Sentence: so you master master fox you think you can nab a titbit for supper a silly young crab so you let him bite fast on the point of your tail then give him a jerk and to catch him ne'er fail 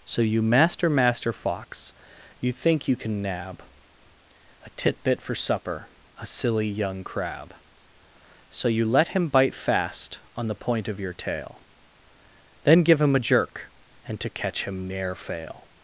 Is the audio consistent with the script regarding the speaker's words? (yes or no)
yes